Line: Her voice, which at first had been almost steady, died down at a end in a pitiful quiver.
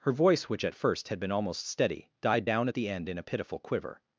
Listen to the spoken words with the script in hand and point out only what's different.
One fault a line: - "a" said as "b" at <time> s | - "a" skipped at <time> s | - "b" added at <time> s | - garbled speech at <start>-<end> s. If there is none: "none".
- "a" said as "the" at 2.7 s